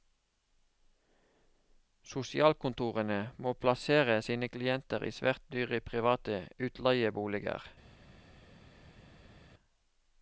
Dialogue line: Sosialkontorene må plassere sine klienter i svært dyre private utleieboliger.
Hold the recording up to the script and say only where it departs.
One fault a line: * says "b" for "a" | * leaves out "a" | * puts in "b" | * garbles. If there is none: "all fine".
all fine